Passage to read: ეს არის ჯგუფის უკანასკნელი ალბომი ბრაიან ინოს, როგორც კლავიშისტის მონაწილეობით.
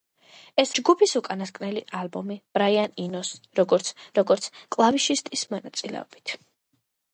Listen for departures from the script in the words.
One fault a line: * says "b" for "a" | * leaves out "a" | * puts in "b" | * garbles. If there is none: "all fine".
* leaves out "არის"
* puts in "როგორც"